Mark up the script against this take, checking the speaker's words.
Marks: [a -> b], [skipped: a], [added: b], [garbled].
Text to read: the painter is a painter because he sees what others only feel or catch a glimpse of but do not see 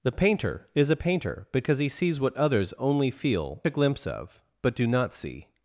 the painter is a painter because he sees what others only feel [skipped: or catch] a glimpse of but do not see